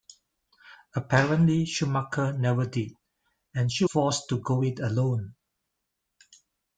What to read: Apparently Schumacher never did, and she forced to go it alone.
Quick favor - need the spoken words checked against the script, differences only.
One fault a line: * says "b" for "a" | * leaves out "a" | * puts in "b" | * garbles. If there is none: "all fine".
all fine